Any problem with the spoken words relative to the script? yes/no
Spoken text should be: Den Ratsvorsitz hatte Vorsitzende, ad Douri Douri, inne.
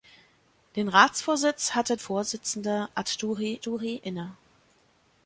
no